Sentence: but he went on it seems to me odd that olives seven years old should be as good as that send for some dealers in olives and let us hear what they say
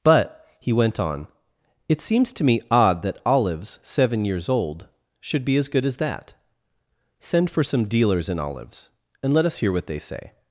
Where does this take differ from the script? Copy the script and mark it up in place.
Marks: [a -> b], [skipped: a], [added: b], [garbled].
but he went on it seems to me odd that olives seven years old should be as good as that send for some dealers in olives and let us hear what they say